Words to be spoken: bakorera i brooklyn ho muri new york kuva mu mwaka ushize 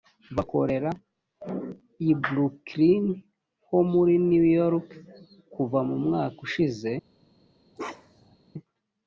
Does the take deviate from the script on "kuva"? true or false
false